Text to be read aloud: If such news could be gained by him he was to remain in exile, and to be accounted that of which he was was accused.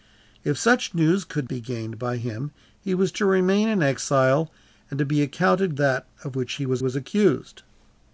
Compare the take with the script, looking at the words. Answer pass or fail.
pass